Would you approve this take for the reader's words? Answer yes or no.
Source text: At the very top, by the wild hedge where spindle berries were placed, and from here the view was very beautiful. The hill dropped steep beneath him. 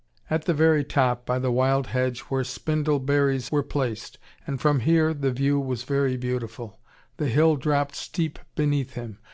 yes